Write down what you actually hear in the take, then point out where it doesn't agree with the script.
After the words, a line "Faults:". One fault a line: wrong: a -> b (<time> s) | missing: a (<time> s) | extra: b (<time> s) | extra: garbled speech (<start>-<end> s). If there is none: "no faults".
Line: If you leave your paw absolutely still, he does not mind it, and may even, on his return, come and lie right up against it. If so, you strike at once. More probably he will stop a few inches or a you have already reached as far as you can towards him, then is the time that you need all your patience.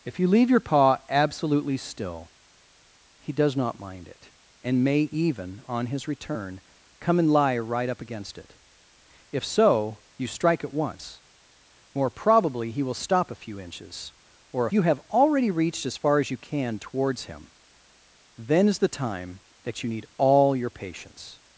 If you leave your paw absolutely still, he does not mind it, and may even, on his return, come and lie right up against it. If so, you strike at once. More probably he will stop a few inches or a you have already reached as far as you can towards him, then is the time that you need all your patience.
Faults:
no faults